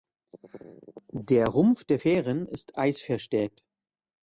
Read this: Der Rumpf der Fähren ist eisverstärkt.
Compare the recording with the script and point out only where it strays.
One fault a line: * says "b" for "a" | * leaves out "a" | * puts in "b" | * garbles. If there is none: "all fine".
all fine